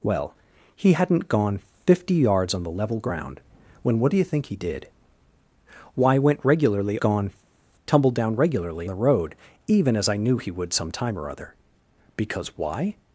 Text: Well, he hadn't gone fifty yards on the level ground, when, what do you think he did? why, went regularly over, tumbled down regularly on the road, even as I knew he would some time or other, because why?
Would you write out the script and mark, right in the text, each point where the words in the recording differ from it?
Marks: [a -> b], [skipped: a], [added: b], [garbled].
Well, he hadn't gone fifty yards on the level ground, when, what do you think he did? why, went regularly [over, -> gone] tumbled down regularly [skipped: on] the road, even as I knew he would some time or other, because why?